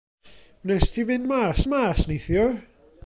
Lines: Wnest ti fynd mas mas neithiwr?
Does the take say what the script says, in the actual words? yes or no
yes